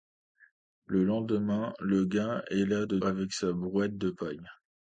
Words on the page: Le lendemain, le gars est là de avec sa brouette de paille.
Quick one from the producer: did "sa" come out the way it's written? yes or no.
yes